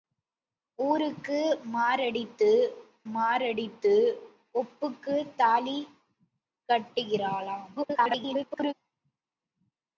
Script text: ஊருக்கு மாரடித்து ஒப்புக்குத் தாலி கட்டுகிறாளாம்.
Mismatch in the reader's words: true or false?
true